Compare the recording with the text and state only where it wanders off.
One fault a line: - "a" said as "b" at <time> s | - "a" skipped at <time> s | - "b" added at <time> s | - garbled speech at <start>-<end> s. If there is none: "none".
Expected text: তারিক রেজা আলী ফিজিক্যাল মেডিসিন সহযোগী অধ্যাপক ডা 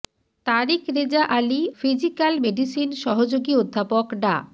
none